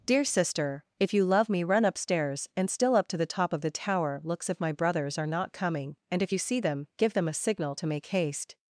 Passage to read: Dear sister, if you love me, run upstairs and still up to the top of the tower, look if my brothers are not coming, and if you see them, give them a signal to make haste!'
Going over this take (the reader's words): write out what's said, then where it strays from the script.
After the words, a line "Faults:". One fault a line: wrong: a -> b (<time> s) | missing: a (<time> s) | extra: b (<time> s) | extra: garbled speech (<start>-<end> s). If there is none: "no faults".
Dear sister, if you love me, run upstairs and still up to the top of the tower, looks if my brothers are not coming, and if you see them, give them a signal to make haste!'
Faults:
wrong: look -> looks (4.2 s)